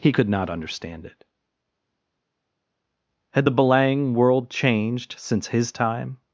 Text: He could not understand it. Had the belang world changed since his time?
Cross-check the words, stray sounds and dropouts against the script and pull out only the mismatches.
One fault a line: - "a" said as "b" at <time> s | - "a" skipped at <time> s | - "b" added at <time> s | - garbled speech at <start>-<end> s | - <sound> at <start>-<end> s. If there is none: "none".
none